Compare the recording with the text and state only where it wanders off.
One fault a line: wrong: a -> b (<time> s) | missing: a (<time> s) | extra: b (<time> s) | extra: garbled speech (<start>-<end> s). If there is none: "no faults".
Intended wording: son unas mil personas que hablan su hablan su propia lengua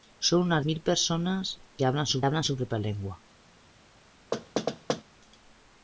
no faults